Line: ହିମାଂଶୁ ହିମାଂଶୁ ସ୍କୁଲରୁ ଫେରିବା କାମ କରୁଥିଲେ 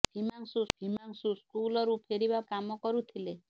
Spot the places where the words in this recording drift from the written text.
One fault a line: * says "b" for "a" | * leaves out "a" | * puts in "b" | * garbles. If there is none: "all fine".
all fine